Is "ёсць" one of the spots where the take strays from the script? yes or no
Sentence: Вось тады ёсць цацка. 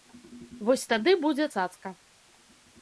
yes